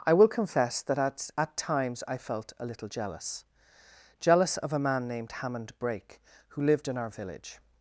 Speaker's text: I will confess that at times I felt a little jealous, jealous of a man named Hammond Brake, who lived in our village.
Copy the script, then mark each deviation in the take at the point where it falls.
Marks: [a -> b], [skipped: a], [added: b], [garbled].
I will confess that at [added: at] times I felt a little jealous, jealous of a man named Hammond Brake, who lived in our village.